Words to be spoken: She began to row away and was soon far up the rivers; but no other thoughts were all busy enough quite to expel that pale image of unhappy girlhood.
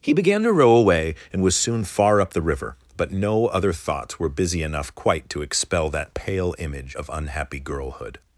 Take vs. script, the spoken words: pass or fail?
fail